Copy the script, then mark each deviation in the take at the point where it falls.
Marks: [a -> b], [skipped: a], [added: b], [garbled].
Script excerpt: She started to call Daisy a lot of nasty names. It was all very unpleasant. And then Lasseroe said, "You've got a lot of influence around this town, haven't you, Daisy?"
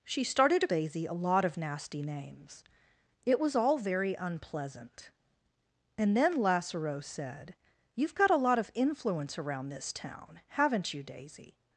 She started to [skipped: call] Daisy a lot of nasty names. It was all very unpleasant. And then Lasseroe said, "You've got a lot of influence around this town, haven't you, Daisy?"